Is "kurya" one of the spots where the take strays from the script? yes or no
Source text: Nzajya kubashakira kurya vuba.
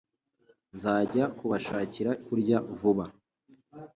no